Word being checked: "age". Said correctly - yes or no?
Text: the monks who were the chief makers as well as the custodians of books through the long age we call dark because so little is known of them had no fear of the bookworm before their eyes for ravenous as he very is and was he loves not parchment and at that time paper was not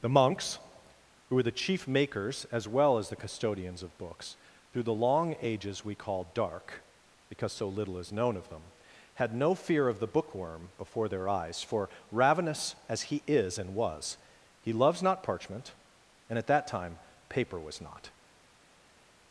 no